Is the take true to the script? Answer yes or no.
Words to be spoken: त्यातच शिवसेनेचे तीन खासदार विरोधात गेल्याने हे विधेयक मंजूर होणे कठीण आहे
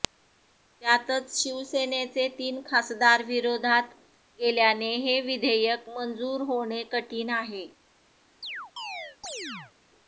yes